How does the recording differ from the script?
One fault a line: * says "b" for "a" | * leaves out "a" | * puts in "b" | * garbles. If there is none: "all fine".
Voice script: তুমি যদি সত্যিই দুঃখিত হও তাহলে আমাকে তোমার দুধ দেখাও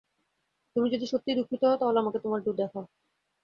all fine